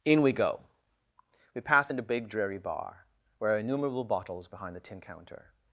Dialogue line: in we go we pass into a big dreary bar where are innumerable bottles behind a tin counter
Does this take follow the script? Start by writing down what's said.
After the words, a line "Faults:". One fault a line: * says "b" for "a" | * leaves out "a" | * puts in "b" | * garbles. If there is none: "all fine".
in we go we pass into big dreary bar where are innumerable bottles behind the tin counter
Faults:
* leaves out "a"
* says "the" for "a"